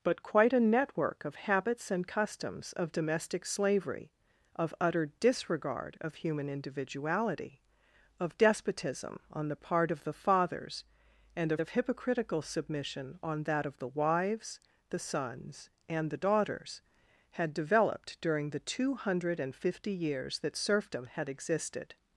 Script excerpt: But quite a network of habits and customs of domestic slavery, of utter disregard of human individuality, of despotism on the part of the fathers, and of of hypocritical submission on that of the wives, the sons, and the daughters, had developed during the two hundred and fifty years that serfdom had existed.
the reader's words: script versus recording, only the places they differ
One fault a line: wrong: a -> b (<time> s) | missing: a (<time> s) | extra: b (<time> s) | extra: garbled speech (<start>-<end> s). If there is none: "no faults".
no faults